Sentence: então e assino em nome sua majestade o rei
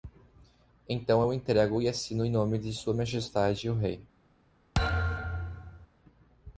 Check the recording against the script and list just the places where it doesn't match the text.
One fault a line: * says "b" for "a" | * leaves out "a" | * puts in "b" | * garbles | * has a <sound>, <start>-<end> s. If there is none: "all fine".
* puts in "eu entrego"
* puts in "de"
* has a thud, 4.7-5.9 s